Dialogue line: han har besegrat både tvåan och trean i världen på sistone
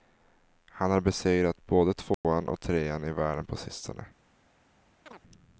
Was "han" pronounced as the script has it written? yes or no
yes